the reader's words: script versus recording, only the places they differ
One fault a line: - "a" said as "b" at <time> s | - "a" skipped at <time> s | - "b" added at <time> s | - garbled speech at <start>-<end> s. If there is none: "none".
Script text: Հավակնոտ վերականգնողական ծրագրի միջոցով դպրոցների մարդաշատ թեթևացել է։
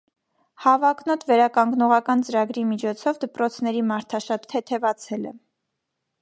none